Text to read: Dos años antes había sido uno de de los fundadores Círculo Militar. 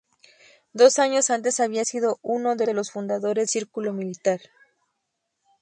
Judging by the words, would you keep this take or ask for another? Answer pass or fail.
pass